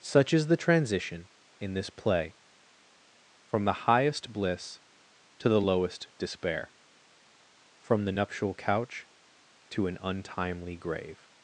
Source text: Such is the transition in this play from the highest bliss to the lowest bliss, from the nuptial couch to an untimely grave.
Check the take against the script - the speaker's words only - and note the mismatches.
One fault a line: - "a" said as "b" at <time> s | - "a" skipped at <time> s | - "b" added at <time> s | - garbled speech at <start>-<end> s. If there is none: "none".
- "bliss" said as "despair" at 6.2 s